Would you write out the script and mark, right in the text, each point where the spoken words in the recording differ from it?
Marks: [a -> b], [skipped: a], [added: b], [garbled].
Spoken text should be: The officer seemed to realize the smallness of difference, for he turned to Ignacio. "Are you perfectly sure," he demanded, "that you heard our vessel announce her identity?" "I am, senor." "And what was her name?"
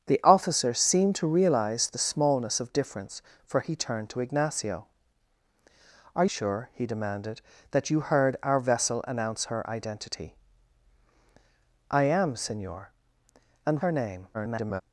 The officer seemed to realize the smallness of difference, for he turned to Ignacio. "Are [skipped: you perfectly] sure," he demanded, "that you heard our vessel announce her identity?" "I am, senor." "And [skipped: what was] her name?" [garbled]